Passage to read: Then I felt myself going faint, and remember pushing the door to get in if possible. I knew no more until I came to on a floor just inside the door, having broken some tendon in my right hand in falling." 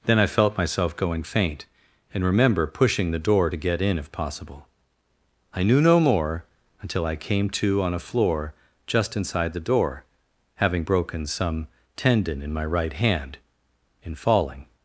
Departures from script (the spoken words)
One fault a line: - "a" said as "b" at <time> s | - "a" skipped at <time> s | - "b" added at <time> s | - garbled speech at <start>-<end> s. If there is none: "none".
none